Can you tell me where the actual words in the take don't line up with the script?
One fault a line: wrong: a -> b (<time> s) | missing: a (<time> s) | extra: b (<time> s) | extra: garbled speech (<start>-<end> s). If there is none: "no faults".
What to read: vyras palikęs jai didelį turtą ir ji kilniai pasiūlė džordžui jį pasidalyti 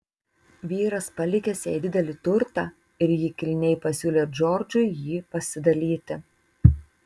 no faults